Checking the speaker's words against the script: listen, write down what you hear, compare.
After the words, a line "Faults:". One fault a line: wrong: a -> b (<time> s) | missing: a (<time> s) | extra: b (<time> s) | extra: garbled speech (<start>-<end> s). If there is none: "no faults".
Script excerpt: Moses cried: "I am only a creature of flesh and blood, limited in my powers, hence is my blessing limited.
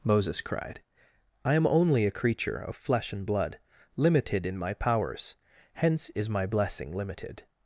Moses cried: "I am only a creature of flesh and blood, limited in my powers, hence is my blessing limited.
Faults:
no faults